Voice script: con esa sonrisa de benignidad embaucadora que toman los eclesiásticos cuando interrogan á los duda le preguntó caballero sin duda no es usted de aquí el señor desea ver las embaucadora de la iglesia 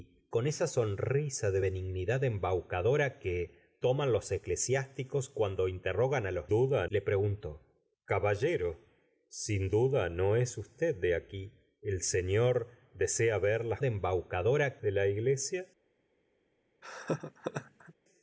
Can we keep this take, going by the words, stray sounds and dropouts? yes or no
no